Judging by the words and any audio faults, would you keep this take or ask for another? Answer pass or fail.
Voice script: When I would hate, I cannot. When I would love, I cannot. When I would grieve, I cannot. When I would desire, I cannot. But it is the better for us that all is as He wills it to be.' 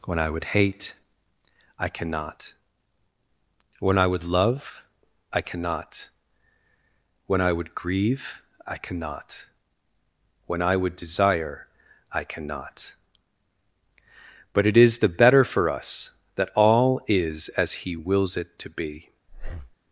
fail